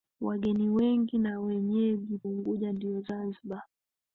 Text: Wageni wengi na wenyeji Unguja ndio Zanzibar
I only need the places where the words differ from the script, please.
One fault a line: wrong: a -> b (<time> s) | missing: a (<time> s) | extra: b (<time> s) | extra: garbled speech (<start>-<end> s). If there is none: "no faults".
no faults